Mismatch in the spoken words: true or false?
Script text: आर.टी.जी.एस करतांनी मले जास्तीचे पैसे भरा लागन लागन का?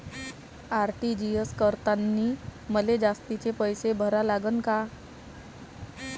true